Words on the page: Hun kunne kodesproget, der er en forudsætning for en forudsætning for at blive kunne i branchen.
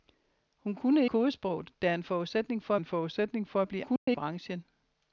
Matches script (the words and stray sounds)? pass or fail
fail